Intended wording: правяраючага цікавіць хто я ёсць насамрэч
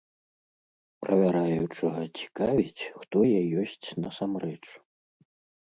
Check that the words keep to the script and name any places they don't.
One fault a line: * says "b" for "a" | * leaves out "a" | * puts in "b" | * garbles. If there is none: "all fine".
all fine